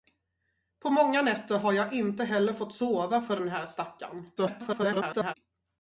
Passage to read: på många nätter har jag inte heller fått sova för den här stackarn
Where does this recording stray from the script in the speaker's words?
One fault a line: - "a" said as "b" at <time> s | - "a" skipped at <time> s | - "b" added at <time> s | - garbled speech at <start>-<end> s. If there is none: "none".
- garbled speech at 4.4-5.3 s